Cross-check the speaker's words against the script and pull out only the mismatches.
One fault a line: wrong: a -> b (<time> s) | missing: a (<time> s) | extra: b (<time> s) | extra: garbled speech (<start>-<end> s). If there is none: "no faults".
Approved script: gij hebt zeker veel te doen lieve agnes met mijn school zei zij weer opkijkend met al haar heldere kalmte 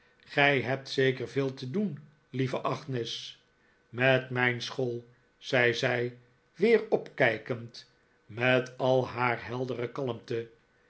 no faults